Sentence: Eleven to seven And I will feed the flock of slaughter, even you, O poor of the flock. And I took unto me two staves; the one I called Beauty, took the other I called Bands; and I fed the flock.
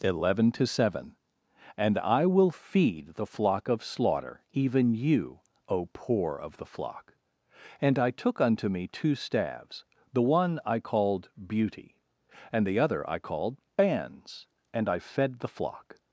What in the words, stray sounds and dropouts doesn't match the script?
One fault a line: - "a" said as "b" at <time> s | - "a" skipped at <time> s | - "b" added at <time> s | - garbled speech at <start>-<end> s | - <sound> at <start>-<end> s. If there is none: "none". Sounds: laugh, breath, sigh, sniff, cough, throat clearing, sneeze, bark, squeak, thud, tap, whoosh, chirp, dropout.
- "took" said as "and" at 12.5 s